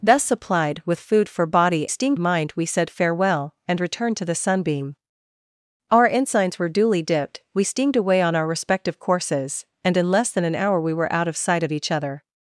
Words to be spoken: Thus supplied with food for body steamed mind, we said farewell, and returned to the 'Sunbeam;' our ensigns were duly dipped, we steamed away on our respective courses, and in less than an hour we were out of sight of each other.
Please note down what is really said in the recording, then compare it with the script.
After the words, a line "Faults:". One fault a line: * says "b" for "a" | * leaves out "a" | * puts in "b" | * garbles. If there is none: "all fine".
Thus supplied with food for body steamed mind, we said farewell, and returned to the 'Sunbeam;' our ensigns were duly dipped, we steamed away on our respective courses, and in less than an hour we were out of sight of each other.
Faults:
all fine